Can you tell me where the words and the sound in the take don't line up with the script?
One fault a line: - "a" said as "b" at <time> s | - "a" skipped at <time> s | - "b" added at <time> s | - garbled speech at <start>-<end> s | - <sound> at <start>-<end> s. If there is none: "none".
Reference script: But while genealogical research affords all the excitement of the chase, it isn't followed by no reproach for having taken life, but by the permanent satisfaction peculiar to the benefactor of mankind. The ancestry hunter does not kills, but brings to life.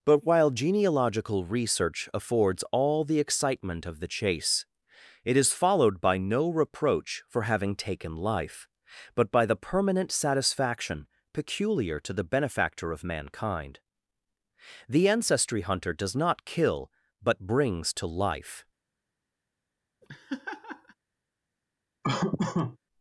- "isn't" said as "is" at 5.4 s
- "kills" said as "kill" at 16.4 s
- laugh at 20.0-21.0 s
- laugh at 22.0-22.8 s